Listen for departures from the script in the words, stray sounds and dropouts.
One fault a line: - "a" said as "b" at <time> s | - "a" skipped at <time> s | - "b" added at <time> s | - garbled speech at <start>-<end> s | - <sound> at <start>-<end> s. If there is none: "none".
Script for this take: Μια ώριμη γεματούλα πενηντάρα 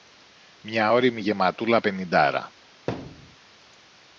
- thud at 2.9-3.4 s